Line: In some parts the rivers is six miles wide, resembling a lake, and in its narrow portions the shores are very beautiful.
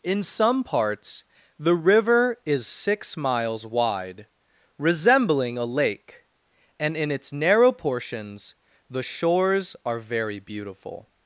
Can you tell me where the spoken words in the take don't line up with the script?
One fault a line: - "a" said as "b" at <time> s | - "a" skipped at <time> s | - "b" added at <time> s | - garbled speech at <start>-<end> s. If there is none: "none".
- "rivers" said as "river" at 1.8 s